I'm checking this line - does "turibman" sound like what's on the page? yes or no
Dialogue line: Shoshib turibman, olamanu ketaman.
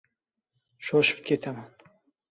no